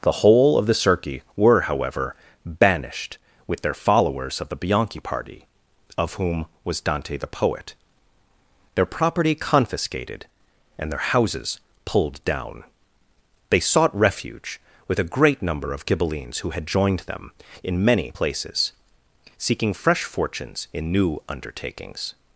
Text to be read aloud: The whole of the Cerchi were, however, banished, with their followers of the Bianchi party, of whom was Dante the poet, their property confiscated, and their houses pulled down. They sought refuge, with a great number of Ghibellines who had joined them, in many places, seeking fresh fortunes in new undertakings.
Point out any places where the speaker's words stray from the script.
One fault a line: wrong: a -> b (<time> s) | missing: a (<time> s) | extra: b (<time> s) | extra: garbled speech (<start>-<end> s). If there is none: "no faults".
no faults